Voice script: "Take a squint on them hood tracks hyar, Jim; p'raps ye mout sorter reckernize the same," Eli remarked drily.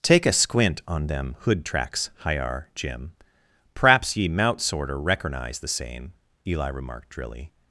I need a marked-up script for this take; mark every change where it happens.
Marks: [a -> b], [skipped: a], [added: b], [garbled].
"Take a squint on them hood tracks hyar, Jim; p'raps ye mout sorter reckernize the same," Eli remarked drily.